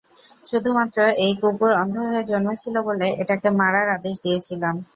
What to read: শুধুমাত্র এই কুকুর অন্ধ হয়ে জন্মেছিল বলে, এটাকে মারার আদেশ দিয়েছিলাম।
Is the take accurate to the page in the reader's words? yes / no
yes